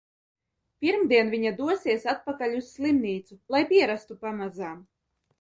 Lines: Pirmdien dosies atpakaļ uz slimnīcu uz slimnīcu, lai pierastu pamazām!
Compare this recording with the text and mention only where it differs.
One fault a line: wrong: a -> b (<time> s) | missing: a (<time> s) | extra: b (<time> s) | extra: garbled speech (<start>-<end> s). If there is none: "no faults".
extra: viņa (1.3 s)
missing: uz slimnīcu (3.4 s)